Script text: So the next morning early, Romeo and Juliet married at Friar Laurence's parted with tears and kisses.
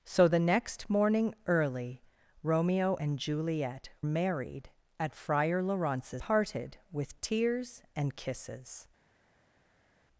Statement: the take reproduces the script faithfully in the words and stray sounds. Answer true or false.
true